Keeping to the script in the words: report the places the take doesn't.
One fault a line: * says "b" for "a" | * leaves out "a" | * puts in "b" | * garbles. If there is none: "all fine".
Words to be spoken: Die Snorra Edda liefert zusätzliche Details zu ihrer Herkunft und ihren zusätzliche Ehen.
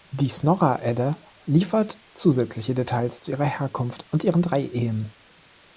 * says "drei" for "zusätzliche"